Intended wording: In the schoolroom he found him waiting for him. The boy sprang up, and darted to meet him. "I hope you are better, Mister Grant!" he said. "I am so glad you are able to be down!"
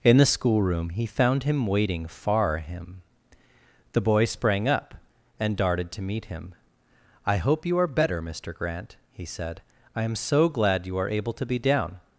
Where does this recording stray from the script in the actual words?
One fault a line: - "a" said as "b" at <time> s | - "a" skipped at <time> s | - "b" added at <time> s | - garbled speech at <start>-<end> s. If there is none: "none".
- "for" said as "far" at 2.1 s